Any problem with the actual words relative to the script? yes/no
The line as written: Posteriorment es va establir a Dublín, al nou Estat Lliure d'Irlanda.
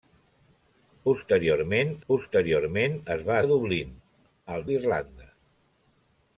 yes